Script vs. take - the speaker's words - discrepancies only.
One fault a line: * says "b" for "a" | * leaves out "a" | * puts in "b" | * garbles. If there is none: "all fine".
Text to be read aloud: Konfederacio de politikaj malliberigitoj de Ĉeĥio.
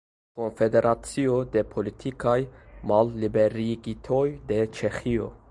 all fine